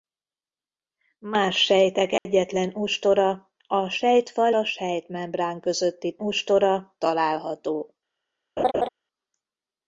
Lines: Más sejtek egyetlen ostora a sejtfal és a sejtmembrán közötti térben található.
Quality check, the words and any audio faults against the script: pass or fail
fail